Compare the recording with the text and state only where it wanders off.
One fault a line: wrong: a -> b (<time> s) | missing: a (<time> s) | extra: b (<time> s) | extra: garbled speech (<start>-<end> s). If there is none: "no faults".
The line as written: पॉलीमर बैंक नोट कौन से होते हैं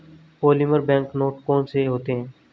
no faults